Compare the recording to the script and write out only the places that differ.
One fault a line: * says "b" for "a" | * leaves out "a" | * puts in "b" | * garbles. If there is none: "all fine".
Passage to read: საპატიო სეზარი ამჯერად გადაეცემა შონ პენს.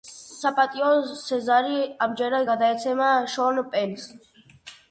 all fine